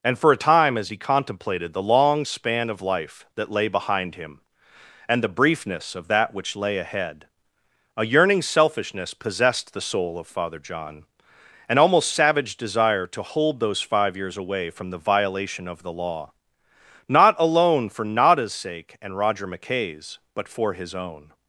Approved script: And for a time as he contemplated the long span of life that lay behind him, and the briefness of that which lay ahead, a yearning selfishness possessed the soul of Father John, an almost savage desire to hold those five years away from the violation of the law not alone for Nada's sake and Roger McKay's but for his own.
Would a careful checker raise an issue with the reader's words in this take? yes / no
no